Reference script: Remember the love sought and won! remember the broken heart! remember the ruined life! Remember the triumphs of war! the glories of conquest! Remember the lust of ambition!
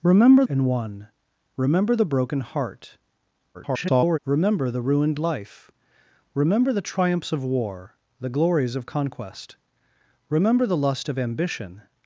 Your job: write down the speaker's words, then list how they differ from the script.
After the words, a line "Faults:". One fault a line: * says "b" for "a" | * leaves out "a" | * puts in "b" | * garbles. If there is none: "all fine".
Remember and won! remember the broken heart! [garbled] remember the ruined life! Remember the triumphs of war! the glories of conquest! Remember the lust of ambition!
Faults:
* leaves out "the love sought"
* garbles